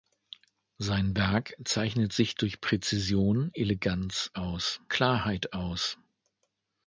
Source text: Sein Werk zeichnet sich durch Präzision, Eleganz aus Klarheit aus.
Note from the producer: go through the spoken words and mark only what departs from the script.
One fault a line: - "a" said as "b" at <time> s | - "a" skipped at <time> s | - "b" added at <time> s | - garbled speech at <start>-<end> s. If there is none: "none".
none